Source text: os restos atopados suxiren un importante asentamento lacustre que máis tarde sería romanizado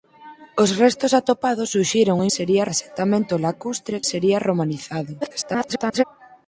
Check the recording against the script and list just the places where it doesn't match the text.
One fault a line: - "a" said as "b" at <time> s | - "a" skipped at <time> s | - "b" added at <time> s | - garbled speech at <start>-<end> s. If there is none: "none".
- "importante" said as "sería" at 2.4 s
- "que máis tarde" skipped at 4.0 s
- garbled speech at 5.2-6.0 s